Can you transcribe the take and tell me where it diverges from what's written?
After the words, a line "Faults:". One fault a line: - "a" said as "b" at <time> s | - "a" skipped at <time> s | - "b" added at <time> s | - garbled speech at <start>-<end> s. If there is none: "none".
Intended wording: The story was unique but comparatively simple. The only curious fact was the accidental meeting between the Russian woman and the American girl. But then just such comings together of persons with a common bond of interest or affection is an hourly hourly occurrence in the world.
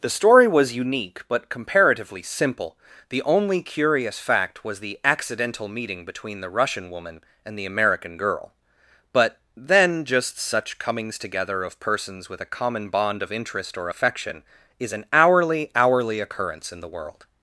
The story was unique but comparatively simple. The only curious fact was the accidental meeting between the Russian woman and the American girl. But then just such comings together of persons with a common bond of interest or affection is an hourly hourly occurrence in the world.
Faults:
none